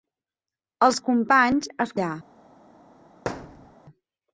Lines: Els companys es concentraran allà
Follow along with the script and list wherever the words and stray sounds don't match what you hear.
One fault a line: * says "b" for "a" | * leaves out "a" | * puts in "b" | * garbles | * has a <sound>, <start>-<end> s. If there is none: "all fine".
* leaves out "concentraran"
* has a thud, 3.3-3.7 s